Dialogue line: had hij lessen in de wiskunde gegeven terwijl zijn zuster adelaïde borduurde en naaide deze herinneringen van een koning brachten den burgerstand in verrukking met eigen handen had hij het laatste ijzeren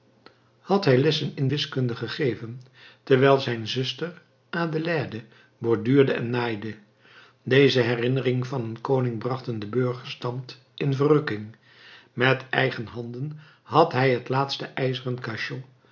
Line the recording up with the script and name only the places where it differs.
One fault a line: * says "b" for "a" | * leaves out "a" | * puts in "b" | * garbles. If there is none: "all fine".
* leaves out "de"